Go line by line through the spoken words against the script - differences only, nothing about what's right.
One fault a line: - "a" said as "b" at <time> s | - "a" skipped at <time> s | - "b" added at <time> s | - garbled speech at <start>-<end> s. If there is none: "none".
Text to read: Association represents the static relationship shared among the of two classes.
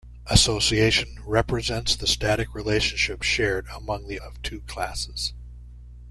none